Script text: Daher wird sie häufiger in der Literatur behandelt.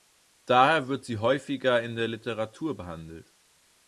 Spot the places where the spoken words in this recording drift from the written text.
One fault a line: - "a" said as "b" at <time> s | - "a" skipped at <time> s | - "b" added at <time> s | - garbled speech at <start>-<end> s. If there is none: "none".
none